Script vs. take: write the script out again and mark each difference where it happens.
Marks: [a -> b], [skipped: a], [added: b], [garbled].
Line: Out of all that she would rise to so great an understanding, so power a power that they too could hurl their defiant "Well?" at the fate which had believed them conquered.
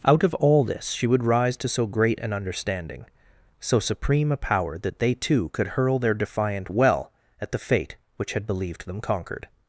Out of all [that -> this] she would rise to so great an understanding, so [power -> supreme] a power that they too could hurl their defiant "Well?" at the fate which had believed them conquered.